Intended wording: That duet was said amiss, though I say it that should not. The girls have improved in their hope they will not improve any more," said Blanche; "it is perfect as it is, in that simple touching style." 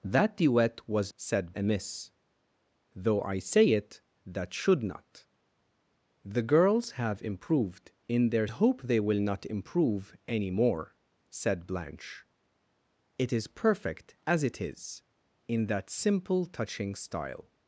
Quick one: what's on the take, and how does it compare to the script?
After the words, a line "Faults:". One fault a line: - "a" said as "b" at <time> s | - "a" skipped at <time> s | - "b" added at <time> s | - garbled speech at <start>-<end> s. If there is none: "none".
That duet was said amiss, though I say it that should not. The girls have improved in their hope they will not improve any more," said Blanche; "it is perfect as it is, in that simple touching style."
Faults:
none